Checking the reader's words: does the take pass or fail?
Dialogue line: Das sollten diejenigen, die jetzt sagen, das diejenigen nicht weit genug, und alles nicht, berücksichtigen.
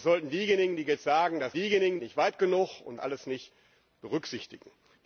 pass